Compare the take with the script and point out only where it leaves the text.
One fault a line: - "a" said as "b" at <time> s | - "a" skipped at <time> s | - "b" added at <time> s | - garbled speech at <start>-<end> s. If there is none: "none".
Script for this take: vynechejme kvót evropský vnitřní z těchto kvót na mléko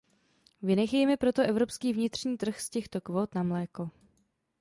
- "kvót" said as "proto" at 1.2 s
- "trh" added at 2.4 s